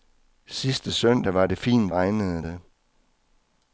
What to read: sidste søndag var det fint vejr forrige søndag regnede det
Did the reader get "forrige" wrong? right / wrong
wrong